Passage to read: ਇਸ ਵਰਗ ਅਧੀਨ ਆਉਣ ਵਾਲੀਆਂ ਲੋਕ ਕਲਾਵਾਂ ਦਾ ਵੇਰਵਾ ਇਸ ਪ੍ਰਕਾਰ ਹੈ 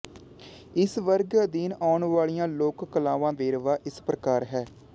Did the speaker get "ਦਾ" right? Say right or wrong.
wrong